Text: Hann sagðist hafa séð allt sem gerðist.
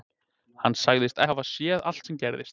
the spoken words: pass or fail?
pass